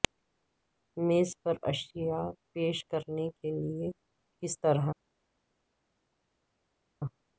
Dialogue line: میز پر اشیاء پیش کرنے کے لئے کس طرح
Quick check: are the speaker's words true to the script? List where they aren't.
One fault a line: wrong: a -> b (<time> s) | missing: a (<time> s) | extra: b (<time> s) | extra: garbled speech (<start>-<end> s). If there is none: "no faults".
no faults